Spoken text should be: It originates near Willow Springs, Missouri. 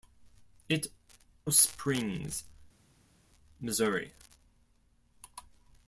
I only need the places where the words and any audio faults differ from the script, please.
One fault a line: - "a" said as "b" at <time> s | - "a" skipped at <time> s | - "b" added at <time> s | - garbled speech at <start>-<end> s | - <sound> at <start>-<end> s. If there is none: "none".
- "originates near Willow" skipped at 0.9 s